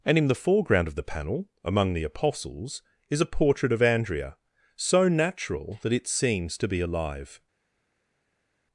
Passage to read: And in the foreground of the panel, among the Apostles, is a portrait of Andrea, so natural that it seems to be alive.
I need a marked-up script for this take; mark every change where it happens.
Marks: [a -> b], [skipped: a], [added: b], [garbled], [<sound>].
And in the foreground of the panel, among the Apostles, is a portrait of Andrea, so natural that it seems to be alive.